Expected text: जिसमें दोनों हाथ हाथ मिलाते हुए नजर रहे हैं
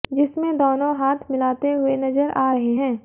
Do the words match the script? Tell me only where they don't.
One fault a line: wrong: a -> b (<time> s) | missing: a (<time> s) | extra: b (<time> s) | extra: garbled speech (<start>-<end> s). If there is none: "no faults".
missing: हाथ (1.3 s)
extra: आ (2.3 s)